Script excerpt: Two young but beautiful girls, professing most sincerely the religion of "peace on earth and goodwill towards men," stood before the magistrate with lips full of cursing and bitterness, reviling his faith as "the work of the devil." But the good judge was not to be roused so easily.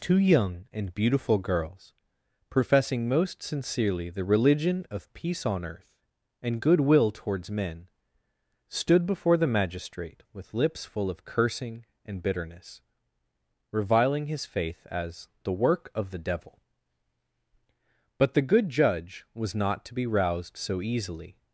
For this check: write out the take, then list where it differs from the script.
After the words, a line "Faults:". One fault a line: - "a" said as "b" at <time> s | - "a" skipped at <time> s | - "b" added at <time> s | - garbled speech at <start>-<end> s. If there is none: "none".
Two young and beautiful girls, professing most sincerely the religion of "peace on earth and goodwill towards men," stood before the magistrate with lips full of cursing and bitterness, reviling his faith as "the work of the devil." But the good judge was not to be roused so easily.
Faults:
- "but" said as "and" at 0.7 s